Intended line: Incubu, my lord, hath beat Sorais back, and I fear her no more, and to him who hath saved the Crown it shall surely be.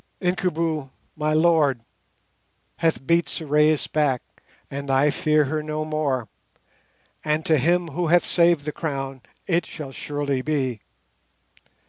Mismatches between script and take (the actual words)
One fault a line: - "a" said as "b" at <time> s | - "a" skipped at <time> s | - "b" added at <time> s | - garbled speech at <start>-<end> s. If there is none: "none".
none